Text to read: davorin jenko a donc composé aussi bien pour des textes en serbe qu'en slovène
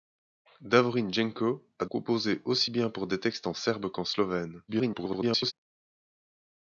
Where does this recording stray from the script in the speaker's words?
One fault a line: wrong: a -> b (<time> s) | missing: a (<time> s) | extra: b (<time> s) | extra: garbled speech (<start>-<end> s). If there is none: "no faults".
missing: donc (1.9 s)
extra: garbled speech (4.7-5.5 s)